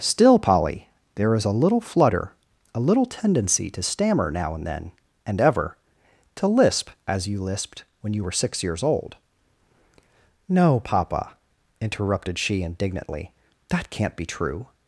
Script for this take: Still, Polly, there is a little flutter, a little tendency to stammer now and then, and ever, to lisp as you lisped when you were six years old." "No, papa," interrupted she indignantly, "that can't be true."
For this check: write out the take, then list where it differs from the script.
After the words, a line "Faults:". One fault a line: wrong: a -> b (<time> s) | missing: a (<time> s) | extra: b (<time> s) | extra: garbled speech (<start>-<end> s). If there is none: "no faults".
Still, Polly, there is a little flutter, a little tendency to stammer now and then, and ever, to lisp as you lisped when you were six years old." "No, papa," interrupted she indignantly, "that can't be true."
Faults:
no faults